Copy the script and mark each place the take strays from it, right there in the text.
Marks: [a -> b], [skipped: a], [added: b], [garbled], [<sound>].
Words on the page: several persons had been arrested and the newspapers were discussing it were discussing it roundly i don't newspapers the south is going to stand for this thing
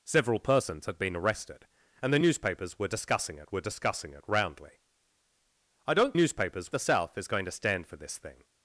several persons had been arrested and the newspapers were discussing it were discussing it roundly i don't newspapers the south is going to stand for this thing